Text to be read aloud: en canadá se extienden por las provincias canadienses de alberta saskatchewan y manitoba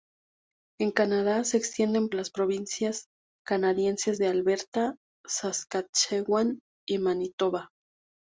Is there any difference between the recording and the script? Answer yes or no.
yes